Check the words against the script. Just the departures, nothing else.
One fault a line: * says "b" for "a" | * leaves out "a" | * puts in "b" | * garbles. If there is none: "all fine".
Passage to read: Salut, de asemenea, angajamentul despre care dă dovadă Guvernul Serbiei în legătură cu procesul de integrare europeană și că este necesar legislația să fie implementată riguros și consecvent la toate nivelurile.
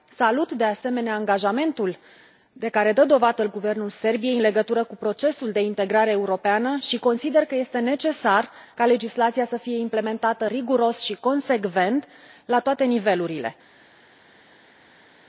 * says "de" for "despre"
* puts in "consider"
* puts in "ca"